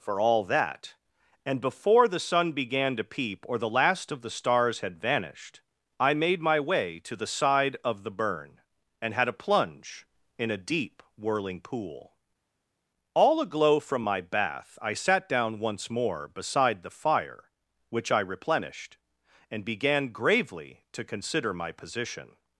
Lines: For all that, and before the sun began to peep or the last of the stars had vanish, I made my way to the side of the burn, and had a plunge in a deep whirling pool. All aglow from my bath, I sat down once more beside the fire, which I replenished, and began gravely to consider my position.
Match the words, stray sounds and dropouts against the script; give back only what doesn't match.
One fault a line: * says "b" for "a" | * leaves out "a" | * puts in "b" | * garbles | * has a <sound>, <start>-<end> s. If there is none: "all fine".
* says "vanished" for "vanish"